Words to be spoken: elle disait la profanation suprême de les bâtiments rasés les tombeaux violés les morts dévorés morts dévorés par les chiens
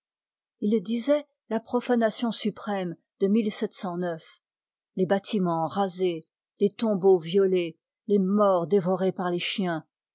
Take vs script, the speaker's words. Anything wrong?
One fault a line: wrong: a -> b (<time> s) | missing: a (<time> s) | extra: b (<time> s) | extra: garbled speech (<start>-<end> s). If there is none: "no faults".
wrong: elle -> il (0.6 s)
missing: morts dévorés (9.1 s)